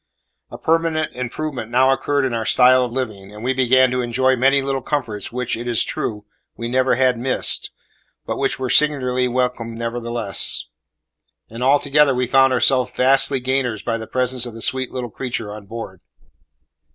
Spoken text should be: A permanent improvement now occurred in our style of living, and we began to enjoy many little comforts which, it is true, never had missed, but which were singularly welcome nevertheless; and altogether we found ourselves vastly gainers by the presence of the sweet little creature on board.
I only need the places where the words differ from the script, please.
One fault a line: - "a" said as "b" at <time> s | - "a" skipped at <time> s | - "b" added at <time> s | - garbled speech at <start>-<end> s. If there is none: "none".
- "we" added at 6.5 s